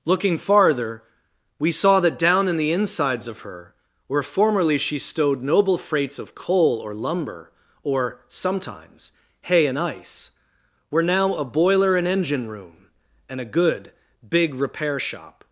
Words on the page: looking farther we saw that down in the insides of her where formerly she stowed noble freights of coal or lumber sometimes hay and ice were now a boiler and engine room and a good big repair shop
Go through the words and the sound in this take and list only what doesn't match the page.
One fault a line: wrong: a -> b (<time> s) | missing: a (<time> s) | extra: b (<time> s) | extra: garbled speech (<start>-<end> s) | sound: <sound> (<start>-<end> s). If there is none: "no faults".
extra: or (7.8 s)